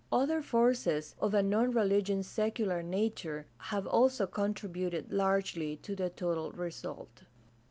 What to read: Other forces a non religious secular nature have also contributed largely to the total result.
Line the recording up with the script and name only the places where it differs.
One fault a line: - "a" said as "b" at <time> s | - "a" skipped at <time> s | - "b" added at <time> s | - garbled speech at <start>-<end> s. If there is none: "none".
- "of" added at 1.2 s